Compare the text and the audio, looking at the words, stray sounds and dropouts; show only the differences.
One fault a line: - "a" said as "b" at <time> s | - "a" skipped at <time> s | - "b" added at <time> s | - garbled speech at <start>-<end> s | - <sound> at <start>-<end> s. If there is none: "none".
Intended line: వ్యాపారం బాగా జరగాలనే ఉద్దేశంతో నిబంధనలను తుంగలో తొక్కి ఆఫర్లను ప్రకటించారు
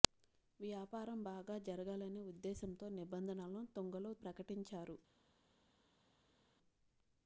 - "తొక్కి ఆఫర్లను" skipped at 4.1 s